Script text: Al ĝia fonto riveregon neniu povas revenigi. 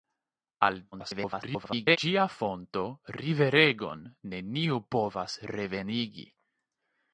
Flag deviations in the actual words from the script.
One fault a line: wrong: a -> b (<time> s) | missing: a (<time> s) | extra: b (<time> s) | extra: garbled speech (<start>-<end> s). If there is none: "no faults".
extra: garbled speech (0.9-2.0 s)